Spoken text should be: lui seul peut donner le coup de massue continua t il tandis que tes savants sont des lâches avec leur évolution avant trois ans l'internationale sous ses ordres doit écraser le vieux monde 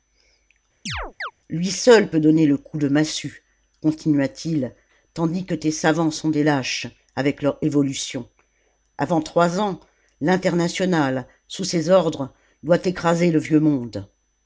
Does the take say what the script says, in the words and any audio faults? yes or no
no